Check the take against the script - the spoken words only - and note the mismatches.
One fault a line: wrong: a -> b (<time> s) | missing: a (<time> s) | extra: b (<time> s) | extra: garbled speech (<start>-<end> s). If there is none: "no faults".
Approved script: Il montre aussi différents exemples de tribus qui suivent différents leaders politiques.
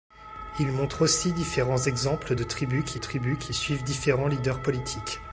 extra: tribus qui (2.9 s)